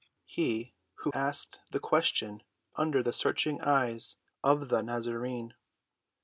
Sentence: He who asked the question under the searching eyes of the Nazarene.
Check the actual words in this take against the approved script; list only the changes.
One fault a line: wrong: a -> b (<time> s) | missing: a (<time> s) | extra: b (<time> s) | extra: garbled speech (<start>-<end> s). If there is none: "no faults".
no faults